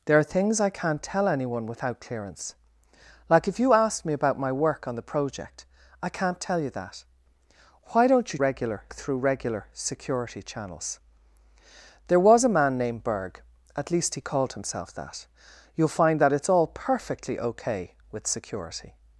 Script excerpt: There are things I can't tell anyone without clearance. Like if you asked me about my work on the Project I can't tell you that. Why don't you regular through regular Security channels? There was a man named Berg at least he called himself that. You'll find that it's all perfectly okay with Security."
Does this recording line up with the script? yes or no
yes